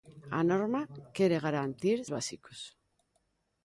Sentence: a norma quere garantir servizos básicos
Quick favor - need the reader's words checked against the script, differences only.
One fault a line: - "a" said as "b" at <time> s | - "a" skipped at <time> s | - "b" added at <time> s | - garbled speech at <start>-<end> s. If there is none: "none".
- "servizos" skipped at 2.0 s